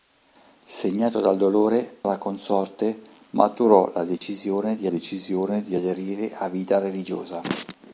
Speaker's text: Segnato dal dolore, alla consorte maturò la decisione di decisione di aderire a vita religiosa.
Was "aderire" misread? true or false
false